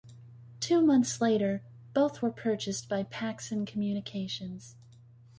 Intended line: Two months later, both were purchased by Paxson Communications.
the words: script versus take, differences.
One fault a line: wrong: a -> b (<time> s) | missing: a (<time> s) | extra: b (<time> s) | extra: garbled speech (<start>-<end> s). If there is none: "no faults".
no faults